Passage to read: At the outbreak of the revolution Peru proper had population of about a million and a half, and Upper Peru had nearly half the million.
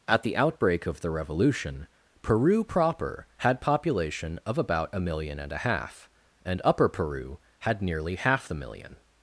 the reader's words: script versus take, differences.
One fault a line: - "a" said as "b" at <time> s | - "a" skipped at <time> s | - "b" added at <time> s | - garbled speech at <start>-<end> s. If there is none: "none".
none